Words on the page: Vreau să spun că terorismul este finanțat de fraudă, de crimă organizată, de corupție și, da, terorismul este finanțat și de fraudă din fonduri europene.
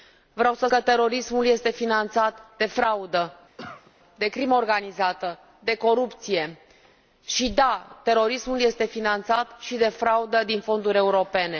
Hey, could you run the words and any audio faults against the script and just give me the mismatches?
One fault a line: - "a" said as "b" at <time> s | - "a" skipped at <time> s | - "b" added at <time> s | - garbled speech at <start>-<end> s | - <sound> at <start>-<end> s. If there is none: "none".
- "spun" skipped at 0.7 s
- cough at 3.6-3.9 s